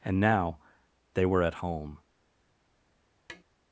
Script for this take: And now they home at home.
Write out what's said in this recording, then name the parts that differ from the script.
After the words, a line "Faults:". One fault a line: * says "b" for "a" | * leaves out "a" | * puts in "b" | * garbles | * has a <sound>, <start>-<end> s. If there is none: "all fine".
And now they were at home.
Faults:
* says "were" for "home"
* has a tap, 3.3-3.4 s